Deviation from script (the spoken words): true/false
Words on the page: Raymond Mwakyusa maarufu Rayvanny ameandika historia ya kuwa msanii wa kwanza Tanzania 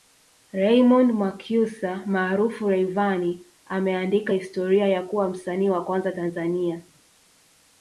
false